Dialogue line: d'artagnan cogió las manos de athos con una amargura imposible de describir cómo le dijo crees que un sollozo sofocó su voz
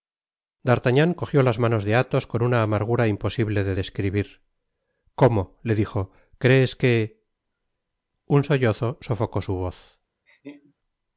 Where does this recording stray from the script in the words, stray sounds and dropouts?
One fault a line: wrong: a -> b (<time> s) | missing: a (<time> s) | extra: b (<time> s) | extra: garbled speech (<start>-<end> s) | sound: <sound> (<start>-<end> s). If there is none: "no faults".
sound: laugh (10.3-10.7 s)